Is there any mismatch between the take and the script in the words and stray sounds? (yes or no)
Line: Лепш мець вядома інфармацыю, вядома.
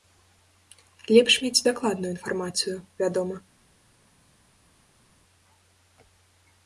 yes